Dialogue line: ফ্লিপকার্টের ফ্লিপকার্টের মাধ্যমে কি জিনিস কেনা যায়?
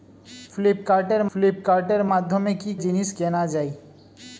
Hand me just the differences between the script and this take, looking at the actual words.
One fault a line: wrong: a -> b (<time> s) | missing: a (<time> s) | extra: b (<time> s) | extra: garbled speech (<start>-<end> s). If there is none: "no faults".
no faults